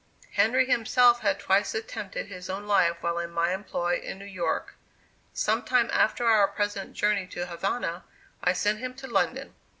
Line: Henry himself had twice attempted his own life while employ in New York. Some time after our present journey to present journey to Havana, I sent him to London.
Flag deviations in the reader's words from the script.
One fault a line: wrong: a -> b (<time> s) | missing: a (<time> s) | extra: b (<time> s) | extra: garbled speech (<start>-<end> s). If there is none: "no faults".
extra: in my (3.2 s)
missing: present journey to (7.5 s)